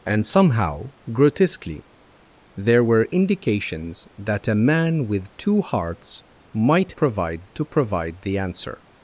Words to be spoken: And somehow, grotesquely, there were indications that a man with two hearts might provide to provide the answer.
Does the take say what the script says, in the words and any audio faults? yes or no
yes